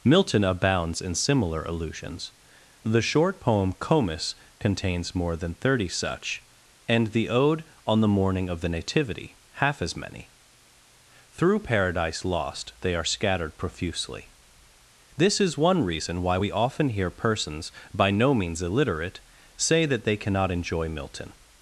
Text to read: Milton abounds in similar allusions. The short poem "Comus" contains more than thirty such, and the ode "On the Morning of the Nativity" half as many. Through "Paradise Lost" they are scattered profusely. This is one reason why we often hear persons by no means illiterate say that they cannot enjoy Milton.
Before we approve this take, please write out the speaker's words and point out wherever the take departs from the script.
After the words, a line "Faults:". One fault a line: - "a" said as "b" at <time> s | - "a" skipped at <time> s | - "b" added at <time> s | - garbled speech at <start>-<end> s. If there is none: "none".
Milton abounds in similar allusions. The short poem "Comus" contains more than thirty such, and the ode "On the Morning of the Nativity" half as many. Through "Paradise Lost" they are scattered profusely. This is one reason why we often hear persons by no means illiterate say that they cannot enjoy Milton.
Faults:
none